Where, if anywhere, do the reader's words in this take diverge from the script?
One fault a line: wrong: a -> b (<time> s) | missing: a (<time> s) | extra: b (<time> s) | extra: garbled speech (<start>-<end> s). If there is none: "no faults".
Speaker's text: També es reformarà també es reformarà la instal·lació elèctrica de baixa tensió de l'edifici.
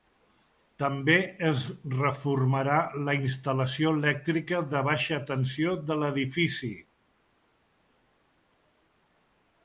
missing: també es reformarà (2.8 s)